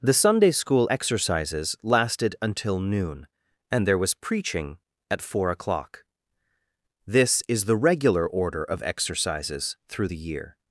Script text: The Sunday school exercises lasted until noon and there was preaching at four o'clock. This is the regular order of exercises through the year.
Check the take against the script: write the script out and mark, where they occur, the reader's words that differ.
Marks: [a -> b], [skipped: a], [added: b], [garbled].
The Sunday school exercises lasted until noon and there was preaching at four o'clock. This is the regular order of exercises through the year.